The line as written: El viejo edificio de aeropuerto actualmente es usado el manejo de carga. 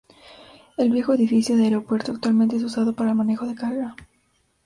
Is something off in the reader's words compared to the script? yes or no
yes